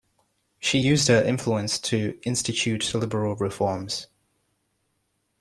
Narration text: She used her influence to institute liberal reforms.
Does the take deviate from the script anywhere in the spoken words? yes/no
no